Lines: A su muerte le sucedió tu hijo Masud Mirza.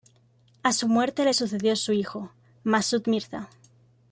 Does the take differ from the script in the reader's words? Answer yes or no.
yes